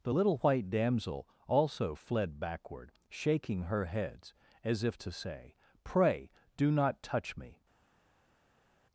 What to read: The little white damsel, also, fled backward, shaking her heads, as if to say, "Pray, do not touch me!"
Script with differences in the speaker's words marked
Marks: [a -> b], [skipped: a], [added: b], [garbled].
The little white damsel, also, fled backward, shaking her heads, as if to say, "Pray, do not touch me!"